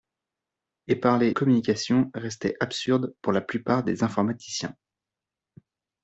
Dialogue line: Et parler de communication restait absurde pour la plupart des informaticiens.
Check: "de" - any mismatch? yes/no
yes